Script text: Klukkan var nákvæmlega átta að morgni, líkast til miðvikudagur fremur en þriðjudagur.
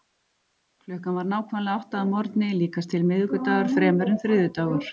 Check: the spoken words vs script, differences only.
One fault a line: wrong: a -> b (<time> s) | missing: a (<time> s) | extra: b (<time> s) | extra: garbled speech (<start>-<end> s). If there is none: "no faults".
no faults